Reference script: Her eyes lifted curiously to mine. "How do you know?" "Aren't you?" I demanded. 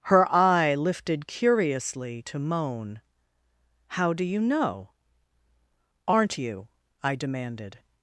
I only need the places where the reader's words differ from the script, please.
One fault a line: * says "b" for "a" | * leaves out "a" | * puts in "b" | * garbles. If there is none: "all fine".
* says "eye" for "eyes"
* says "moan" for "mine"